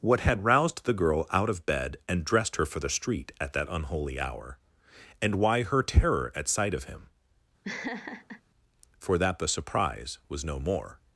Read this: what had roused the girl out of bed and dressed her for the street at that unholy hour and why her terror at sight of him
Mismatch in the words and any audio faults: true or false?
true